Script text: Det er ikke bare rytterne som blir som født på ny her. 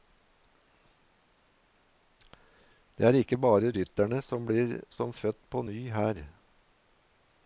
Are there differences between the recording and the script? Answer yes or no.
no